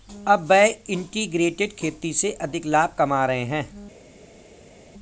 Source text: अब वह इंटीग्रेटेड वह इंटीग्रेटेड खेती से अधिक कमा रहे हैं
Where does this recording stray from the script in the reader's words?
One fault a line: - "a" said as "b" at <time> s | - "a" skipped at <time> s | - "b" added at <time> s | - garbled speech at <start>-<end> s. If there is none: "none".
- "वह इंटीग्रेटेड" skipped at 1.8 s
- "लाभ" added at 2.6 s